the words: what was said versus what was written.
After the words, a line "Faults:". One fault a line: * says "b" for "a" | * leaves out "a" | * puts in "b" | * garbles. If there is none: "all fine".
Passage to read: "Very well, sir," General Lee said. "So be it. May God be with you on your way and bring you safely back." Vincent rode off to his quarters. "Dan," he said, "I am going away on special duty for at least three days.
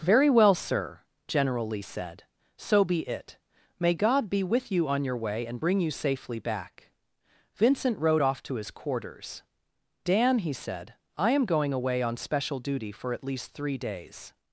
"Very well, sir," General Lee said. "So be it. May God be with you on your way and bring you safely back." Vincent rode off to his quarters. "Dan," he said, "I am going away on special duty for at least three days.
Faults:
all fine